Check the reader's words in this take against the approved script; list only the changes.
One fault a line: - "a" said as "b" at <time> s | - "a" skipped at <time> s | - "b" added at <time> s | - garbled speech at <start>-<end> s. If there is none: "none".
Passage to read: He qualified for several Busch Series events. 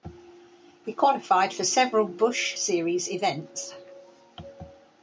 none